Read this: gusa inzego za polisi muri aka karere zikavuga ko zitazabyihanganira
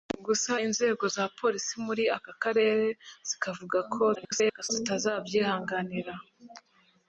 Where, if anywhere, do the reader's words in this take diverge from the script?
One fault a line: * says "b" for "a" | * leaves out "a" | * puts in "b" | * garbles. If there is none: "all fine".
* garbles